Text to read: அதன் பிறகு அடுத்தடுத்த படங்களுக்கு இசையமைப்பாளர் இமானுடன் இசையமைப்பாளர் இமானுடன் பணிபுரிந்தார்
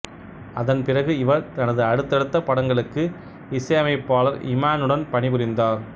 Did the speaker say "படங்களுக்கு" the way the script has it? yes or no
yes